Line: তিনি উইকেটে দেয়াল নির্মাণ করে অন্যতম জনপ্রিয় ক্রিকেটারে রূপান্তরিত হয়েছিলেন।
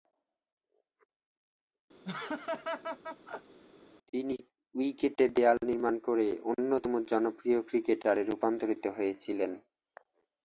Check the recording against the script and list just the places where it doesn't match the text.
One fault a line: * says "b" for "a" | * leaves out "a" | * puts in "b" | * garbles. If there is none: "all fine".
all fine